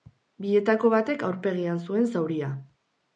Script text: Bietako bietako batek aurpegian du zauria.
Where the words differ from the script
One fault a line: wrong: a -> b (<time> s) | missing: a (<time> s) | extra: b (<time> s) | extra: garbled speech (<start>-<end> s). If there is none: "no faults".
missing: bietako (0.9 s)
wrong: du -> zuen (1.9 s)